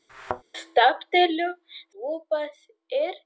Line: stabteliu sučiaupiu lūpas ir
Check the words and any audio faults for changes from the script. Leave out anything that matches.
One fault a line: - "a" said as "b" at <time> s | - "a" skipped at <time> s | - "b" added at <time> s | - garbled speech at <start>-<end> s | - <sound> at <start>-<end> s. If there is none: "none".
- thud at 0.1-0.4 s
- "sučiaupiu" skipped at 1.5 s